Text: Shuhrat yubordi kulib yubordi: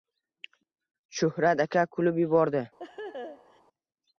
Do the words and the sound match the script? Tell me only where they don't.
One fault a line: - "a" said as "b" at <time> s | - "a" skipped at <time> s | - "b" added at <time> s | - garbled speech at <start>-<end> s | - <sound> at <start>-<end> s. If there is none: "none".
- "yubordi" said as "aka" at 1.7 s
- laugh at 2.8-3.6 s